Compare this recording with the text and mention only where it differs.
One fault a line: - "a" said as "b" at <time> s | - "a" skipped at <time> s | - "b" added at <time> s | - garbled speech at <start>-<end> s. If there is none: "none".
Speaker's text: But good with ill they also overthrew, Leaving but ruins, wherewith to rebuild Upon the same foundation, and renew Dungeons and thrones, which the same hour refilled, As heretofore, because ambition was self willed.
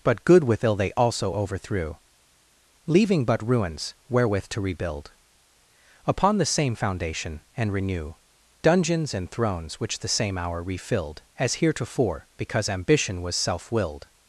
none